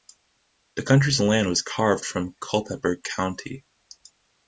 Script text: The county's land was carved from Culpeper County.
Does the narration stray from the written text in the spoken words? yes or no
no